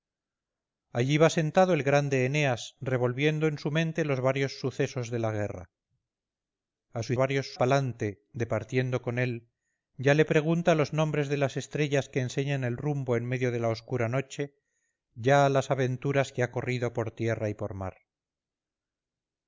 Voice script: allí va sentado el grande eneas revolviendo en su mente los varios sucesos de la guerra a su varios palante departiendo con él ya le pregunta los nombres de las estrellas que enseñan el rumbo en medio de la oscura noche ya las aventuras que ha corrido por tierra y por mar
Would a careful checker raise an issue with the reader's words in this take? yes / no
no